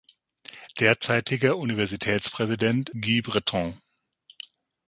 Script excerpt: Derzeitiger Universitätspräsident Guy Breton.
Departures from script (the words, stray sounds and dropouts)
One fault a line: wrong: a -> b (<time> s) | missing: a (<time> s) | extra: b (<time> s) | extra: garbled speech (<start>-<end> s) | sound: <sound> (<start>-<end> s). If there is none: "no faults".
no faults